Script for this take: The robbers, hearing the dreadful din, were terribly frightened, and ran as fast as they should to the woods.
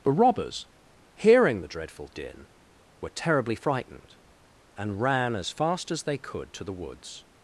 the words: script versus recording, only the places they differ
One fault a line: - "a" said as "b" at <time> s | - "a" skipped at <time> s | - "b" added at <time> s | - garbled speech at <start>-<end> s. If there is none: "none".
- "should" said as "could" at 6.2 s